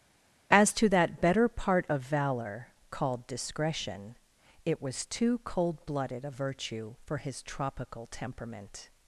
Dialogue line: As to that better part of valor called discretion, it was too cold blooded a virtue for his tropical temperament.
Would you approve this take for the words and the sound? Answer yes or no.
yes